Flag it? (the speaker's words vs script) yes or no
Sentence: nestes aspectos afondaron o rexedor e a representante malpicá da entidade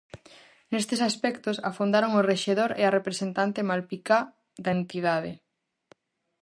no